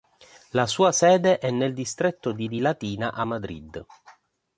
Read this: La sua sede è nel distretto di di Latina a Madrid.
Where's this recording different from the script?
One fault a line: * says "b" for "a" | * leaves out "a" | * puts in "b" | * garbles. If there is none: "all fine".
all fine